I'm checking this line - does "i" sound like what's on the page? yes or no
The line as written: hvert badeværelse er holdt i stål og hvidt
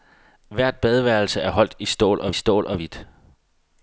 yes